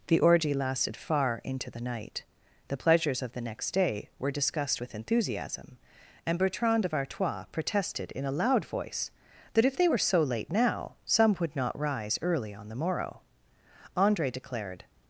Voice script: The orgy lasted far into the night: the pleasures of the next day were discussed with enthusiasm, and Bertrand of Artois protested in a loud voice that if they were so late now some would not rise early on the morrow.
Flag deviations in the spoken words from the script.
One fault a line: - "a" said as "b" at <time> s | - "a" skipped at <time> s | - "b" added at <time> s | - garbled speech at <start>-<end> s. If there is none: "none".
- "Andre declared" added at 14.0 s